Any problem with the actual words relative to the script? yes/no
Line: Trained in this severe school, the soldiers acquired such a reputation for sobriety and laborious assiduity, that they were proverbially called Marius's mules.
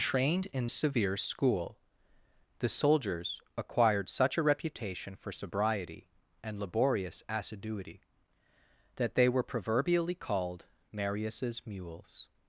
yes